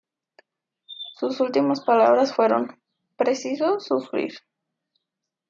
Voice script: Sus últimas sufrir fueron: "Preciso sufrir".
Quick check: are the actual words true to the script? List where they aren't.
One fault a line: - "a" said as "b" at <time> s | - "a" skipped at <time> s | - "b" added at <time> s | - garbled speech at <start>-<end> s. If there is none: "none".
- "sufrir" said as "palabras" at 1.8 s